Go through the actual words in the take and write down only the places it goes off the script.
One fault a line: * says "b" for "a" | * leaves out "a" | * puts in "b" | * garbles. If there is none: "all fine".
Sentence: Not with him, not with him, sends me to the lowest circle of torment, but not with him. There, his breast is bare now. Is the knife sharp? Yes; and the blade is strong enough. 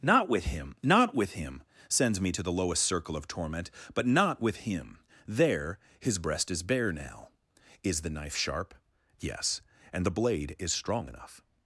all fine